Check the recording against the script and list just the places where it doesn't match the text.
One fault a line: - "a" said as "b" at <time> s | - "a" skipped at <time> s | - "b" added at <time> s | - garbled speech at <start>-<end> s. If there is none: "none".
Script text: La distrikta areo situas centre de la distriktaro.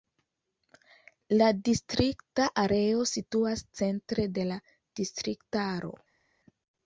none